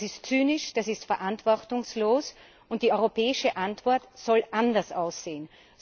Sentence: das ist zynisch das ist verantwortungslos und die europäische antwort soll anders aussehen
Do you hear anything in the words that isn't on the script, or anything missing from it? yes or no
no